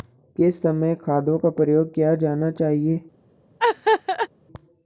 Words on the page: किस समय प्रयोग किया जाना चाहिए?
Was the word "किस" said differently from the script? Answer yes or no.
no